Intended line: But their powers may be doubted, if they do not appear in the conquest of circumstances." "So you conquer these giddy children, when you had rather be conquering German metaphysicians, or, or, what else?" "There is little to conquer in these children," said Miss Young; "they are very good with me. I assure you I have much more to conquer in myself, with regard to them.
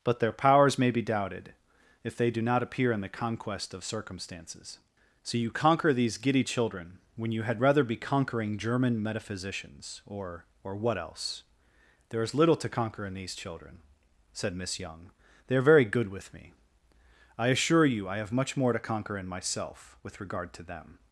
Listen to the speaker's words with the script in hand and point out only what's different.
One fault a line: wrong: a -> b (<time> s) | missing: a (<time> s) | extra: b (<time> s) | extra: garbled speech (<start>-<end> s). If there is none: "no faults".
no faults